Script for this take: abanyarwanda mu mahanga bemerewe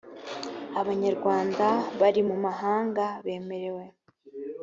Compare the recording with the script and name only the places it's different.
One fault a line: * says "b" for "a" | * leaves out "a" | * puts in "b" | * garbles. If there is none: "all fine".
* puts in "bari"